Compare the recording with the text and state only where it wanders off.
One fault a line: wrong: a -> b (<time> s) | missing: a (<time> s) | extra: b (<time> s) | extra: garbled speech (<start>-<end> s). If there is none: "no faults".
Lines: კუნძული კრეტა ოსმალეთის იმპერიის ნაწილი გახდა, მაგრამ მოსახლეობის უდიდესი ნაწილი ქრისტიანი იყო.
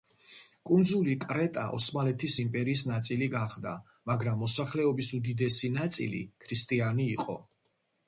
no faults